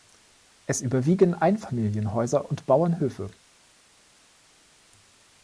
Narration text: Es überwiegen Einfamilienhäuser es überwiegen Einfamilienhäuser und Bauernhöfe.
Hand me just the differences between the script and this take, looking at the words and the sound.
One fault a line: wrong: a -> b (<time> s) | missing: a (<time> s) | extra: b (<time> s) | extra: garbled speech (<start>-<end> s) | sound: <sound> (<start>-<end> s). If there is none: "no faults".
missing: es überwiegen Einfamilienhäuser (2.5 s)